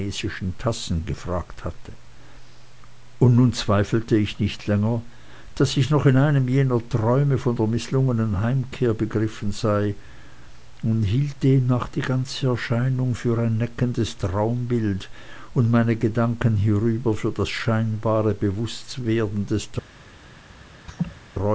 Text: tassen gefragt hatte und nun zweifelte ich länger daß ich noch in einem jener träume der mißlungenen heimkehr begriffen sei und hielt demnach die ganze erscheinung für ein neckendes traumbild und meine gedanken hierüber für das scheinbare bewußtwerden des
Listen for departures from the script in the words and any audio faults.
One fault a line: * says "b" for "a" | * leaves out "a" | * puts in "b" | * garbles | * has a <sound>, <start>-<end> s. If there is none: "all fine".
* puts in "nicht"
* puts in "von"
* has a laugh, 20.9-21.2 s